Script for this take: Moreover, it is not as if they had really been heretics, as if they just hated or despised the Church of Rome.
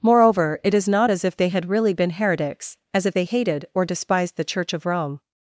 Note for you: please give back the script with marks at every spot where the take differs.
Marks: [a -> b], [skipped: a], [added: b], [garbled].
Moreover, it is not as if they had really been heretics, as if they [skipped: just] hated or despised the Church of Rome.